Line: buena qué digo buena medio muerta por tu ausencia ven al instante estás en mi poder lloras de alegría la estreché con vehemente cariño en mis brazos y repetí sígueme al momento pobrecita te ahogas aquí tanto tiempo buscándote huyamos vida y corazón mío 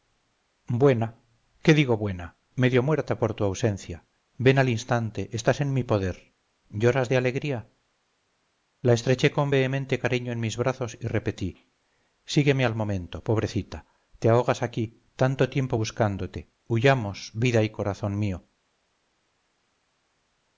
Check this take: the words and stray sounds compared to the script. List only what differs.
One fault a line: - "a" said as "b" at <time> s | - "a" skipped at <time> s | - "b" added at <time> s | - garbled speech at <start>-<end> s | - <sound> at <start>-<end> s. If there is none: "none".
none